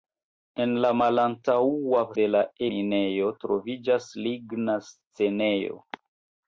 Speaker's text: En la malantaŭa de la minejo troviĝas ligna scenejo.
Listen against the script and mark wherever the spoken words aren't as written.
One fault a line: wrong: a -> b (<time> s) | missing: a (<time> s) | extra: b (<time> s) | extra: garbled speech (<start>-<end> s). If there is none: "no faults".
no faults